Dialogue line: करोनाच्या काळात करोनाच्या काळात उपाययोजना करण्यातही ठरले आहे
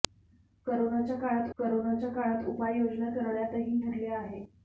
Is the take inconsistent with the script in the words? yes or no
no